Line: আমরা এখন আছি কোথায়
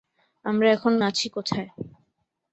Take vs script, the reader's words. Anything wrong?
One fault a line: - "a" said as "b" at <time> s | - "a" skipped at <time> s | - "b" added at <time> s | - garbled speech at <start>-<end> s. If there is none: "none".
none